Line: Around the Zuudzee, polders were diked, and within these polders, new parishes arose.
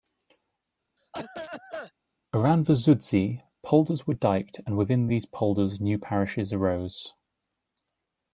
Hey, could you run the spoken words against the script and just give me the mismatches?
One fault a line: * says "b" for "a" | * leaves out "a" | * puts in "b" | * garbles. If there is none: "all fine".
all fine